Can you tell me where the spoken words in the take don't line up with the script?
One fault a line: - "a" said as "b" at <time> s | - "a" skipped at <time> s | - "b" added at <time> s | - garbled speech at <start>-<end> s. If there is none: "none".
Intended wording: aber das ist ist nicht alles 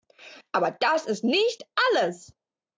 - "ist" skipped at 1.2 s